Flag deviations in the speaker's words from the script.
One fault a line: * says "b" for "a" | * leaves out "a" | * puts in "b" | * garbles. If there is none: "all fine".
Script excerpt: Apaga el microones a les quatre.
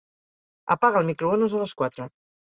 all fine